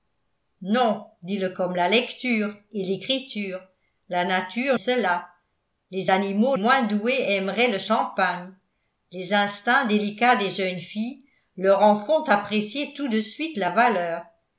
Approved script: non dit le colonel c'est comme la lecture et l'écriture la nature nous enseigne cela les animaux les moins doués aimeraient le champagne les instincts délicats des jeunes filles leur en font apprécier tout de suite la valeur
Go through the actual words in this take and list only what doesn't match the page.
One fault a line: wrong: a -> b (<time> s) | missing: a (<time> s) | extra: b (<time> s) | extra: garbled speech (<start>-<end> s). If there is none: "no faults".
missing: colonel c'est (1.5 s)
missing: nous enseigne (4.8 s)
missing: les (6.6 s)